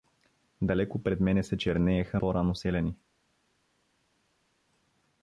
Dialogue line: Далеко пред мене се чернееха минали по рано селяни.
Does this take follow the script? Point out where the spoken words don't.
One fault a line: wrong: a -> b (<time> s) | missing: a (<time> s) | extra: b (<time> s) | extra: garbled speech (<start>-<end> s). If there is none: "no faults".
missing: минали (2.2 s)